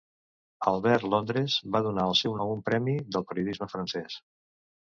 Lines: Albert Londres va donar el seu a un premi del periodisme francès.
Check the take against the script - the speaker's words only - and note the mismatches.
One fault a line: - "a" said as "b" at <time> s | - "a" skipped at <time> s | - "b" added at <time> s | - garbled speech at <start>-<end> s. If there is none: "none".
none